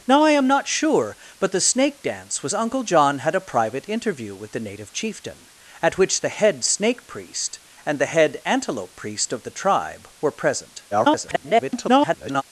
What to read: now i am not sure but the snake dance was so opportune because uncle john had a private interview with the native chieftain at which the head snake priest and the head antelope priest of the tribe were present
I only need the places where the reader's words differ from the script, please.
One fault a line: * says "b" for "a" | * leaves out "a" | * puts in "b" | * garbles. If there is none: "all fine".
* leaves out "so opportune because"
* garbles